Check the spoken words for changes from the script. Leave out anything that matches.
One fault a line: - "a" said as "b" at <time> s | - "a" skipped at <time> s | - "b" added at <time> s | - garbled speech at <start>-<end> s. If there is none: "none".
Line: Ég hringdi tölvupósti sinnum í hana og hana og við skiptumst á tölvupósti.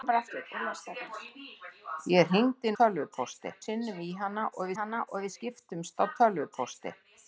none